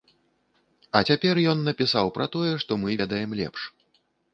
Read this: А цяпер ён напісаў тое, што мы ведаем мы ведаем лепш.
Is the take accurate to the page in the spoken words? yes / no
no